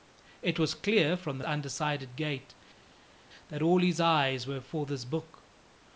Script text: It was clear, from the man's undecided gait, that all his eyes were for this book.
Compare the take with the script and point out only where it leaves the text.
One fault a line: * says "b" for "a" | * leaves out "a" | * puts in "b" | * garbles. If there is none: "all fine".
* leaves out "man's"